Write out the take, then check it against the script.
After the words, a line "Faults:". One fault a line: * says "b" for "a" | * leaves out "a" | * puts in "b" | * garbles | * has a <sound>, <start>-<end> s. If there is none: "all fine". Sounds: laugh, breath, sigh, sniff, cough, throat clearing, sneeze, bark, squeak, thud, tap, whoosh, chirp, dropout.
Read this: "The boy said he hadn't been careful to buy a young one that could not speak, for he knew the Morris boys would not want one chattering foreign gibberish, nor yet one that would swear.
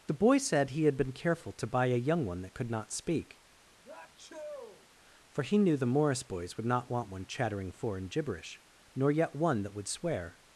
"The boy said he had been careful to buy a young one that could not speak, for he knew the Morris boys would not want one chattering foreign gibberish, nor yet one that would swear.
Faults:
* says "had" for "hadn't"
* has a sneeze, 3.8-4.9 s